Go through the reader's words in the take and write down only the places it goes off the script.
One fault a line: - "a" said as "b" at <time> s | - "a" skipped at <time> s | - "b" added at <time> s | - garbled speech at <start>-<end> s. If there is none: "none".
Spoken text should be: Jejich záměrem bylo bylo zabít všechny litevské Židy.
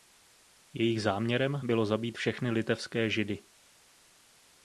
- "bylo" skipped at 1.8 s